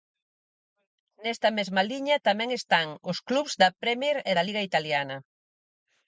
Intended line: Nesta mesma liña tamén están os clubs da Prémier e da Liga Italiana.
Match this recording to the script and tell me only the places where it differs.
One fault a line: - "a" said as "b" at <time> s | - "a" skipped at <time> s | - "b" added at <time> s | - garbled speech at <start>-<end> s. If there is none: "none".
none